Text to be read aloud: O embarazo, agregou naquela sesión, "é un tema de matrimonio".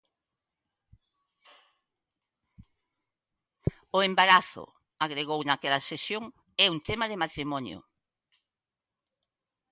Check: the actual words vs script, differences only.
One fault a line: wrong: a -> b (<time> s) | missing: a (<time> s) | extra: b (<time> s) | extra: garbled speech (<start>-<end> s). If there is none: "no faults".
no faults